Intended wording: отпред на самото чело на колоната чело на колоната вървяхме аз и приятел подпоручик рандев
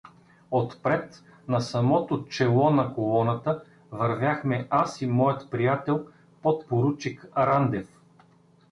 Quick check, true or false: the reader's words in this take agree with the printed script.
false